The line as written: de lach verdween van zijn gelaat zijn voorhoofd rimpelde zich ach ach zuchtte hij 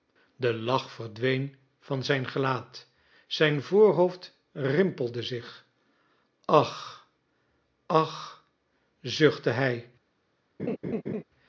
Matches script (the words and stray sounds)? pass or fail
fail